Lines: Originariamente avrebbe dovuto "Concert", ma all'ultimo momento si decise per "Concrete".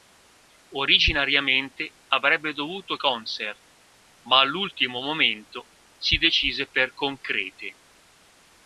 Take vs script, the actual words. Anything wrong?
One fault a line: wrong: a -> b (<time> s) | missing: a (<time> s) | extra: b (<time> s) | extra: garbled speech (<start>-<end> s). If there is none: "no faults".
no faults